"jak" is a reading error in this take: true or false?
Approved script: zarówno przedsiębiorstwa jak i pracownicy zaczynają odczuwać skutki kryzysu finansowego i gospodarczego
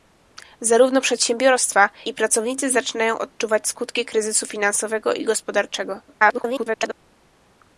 true